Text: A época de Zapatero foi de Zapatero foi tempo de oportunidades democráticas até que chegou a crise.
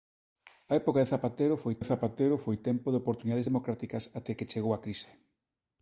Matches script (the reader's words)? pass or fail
pass